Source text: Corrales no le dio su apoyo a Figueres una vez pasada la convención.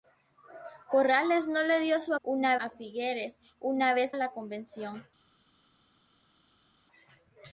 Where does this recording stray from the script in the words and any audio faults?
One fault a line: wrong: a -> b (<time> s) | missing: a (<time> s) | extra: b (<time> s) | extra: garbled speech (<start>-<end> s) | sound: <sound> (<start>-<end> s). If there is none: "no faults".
wrong: apoyo -> una (2.2 s)
missing: pasada (4.1 s)